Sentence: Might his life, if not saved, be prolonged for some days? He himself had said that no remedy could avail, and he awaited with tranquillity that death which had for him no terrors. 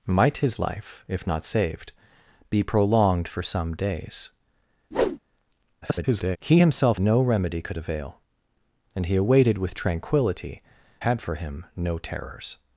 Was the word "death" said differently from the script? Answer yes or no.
yes